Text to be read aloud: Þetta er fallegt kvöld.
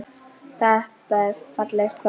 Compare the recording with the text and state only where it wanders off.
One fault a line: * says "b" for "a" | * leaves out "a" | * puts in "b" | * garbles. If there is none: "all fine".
all fine